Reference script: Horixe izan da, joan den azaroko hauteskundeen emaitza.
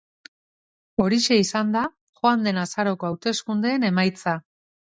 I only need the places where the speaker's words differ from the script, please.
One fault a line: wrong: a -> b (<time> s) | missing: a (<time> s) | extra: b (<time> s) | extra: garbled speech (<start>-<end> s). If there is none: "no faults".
no faults